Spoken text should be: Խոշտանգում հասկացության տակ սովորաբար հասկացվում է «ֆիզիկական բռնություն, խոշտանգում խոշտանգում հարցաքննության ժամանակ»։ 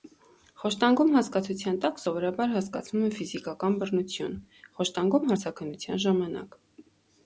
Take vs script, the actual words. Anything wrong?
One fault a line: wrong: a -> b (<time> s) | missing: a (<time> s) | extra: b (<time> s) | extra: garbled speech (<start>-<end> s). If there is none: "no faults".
missing: խոշտանգում (5.3 s)